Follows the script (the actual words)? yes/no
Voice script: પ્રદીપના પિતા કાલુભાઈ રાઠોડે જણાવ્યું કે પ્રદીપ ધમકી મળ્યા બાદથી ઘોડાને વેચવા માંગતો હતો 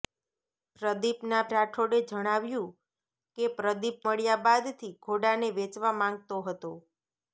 no